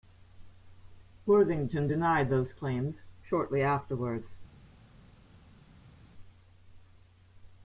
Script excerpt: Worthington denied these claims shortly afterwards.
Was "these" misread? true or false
true